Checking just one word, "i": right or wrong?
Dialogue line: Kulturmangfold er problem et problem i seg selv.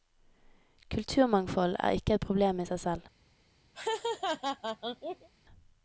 right